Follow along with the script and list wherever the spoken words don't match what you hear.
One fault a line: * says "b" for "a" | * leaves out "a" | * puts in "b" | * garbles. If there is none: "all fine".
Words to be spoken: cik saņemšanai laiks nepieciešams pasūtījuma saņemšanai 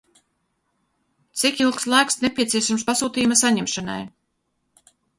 * says "ilgs" for "saņemšanai"